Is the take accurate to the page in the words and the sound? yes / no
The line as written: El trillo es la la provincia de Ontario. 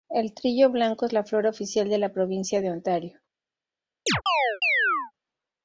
no